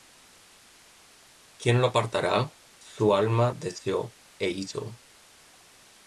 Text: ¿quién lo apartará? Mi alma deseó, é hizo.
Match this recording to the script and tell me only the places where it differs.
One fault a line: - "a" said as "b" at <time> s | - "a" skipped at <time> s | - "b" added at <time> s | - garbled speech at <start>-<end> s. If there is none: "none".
- "Mi" said as "Su" at 2.8 s